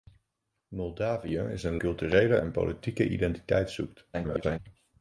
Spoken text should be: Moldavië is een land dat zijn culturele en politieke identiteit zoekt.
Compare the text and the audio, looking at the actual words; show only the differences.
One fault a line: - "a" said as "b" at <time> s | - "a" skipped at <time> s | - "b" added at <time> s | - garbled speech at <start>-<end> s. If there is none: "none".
- "land dat zijn" skipped at 1.8 s
- garbled speech at 4.1-4.6 s